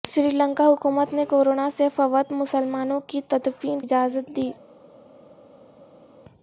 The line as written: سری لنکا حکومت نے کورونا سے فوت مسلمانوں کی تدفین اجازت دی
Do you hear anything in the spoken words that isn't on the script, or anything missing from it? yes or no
no